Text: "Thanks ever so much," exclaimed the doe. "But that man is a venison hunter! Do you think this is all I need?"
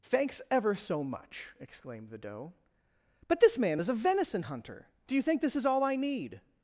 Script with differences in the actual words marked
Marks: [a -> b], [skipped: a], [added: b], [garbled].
"Thanks ever so much," exclaimed the doe. "But [that -> this] man is a venison hunter! Do you think this is all I need?"